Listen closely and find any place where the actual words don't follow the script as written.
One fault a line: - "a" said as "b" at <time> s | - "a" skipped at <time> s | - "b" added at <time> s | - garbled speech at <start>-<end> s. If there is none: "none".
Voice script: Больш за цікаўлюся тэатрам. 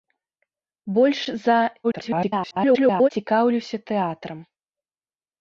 - garbled speech at 1.8-3.1 s